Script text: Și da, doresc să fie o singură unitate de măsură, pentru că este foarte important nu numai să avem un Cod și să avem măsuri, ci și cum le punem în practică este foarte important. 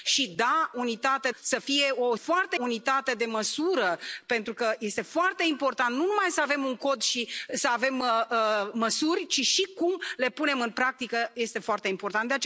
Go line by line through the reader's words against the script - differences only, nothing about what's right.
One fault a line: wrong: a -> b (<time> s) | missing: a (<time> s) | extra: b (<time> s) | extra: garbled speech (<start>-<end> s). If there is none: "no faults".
wrong: doresc -> unitate (0.8 s)
wrong: singură -> foarte (2.1 s)